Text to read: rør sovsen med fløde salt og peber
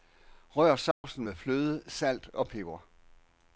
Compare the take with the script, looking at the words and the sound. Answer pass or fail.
fail